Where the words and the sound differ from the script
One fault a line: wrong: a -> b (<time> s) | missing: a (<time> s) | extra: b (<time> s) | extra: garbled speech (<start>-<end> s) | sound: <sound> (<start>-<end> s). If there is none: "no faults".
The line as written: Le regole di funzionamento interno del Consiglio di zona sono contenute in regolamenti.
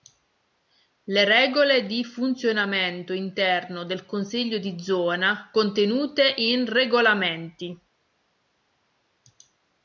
missing: sono (5.5 s)